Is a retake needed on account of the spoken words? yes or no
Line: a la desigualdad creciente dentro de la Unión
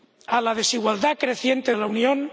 yes